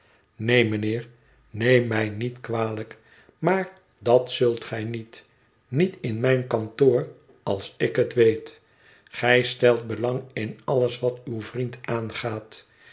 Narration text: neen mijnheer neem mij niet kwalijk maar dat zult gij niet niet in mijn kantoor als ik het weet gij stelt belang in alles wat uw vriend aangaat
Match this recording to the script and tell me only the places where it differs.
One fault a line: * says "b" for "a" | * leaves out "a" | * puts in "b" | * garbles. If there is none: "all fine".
all fine